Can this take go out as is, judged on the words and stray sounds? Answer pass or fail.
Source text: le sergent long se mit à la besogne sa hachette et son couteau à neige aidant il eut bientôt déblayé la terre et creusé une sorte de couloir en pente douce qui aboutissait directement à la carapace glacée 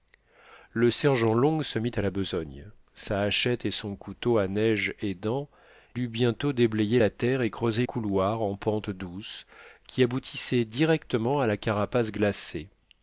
fail